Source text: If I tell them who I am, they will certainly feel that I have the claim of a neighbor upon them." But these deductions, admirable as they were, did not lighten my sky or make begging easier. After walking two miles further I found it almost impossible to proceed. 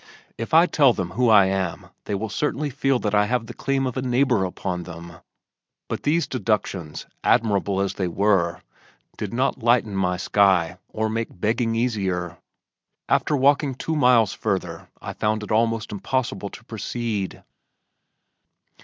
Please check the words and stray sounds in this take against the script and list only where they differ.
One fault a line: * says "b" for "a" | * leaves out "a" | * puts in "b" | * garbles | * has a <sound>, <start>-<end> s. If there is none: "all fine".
all fine